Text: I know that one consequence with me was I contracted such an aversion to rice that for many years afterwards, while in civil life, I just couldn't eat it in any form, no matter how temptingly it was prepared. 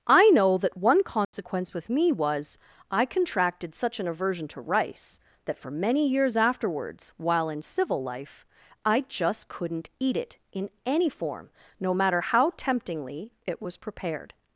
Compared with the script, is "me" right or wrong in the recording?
right